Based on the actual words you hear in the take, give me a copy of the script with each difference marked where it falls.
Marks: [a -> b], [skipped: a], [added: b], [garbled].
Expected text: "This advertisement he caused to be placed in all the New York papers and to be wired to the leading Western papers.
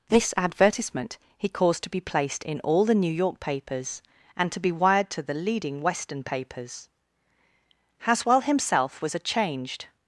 "This advertisement he caused to be placed in all the New York papers and to be wired to the leading Western papers. [added: Haswell himself was a changed]